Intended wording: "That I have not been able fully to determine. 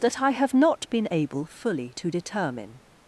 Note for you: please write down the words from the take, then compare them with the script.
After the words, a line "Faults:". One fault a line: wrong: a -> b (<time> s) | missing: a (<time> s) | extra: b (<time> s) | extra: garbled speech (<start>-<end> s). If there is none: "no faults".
"That I have not been able fully to determine.
Faults:
no faults